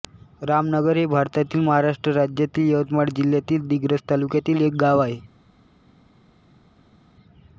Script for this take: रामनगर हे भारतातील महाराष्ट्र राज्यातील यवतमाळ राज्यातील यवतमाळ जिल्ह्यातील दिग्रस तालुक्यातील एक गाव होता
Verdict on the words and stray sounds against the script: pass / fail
fail